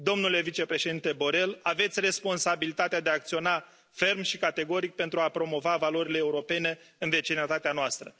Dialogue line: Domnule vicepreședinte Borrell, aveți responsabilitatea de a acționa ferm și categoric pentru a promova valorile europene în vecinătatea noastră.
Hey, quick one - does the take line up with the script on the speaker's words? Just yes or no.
yes